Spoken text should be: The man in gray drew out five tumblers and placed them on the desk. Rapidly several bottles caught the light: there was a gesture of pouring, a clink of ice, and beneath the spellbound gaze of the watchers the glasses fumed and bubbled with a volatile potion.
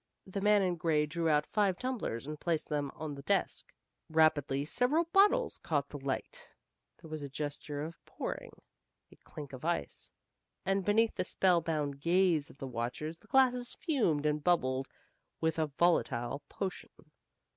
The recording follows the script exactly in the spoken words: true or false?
true